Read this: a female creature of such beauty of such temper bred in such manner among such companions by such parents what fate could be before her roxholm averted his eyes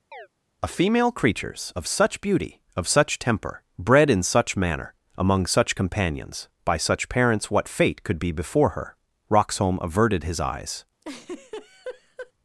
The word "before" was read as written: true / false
true